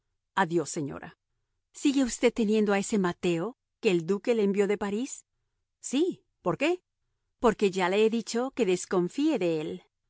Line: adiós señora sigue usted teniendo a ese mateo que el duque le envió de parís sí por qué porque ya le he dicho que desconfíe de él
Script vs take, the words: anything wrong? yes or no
no